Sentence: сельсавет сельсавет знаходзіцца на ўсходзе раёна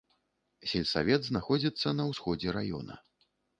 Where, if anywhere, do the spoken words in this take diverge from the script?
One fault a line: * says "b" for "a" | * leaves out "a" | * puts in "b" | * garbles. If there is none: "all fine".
* leaves out "сельсавет"